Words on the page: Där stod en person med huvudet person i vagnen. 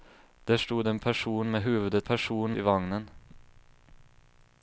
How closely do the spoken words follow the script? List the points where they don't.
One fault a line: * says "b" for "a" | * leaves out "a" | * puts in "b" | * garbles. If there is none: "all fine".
all fine